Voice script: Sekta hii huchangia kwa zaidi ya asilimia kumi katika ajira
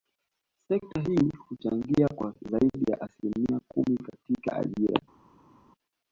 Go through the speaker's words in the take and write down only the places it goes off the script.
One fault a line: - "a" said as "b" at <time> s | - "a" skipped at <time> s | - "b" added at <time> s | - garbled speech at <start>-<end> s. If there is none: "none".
none